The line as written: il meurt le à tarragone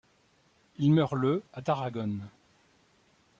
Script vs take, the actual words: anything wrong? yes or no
no